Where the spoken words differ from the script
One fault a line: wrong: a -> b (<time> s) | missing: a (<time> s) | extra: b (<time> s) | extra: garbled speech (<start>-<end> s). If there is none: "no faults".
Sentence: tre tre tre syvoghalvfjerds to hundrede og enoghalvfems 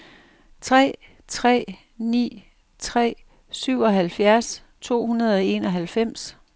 extra: ni (2.0 s)